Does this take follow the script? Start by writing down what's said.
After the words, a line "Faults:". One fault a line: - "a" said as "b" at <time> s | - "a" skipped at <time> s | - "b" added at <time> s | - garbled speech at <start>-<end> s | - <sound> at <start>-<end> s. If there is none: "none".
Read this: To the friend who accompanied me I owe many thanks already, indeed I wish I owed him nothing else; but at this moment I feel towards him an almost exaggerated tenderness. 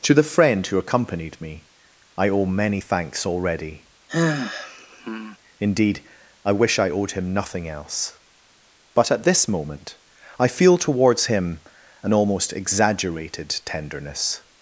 To the friend who accompanied me I owe many thanks already, indeed I wish I owed him nothing else; but at this moment I feel towards him an almost exaggerated tenderness.
Faults:
- sigh at 4.1-5.4 s